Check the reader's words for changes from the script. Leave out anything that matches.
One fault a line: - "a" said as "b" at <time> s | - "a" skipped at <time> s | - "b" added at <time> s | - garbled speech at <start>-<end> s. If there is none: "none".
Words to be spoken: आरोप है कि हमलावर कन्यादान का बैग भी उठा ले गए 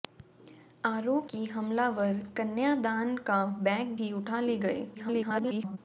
- "है" skipped at 1.3 s
- garbled speech at 4.9-5.8 s